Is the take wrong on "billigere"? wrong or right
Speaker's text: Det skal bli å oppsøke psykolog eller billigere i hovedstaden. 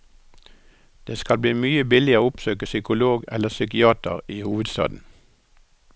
wrong